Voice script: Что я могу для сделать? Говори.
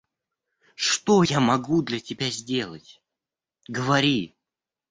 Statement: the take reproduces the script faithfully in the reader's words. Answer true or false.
false